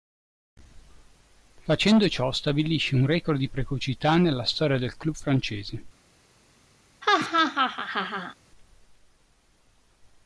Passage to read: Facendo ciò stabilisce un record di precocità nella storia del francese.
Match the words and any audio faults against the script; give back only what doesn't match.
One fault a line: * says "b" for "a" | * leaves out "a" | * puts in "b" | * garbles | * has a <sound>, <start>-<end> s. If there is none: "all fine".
* puts in "club"
* has a laugh, 7.0-8.3 s